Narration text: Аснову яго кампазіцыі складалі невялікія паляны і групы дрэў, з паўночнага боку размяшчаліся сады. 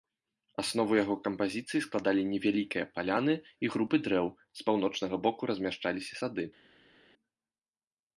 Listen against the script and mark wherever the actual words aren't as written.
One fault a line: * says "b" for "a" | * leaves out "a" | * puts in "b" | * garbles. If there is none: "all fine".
all fine